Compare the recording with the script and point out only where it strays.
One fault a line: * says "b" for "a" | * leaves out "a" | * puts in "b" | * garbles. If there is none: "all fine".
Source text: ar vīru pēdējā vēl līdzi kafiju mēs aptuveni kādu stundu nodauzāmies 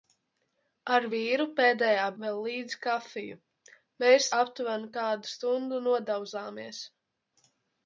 all fine